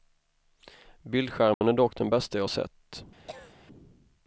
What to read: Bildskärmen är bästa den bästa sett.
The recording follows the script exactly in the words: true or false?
false